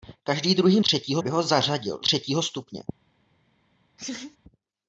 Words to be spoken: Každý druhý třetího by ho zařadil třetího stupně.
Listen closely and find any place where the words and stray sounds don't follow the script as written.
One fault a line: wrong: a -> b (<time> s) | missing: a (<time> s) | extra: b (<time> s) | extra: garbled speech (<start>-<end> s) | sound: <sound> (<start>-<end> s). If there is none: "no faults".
sound: laugh (4.0-4.4 s)